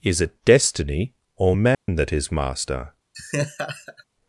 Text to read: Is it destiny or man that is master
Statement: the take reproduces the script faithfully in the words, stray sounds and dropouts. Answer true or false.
false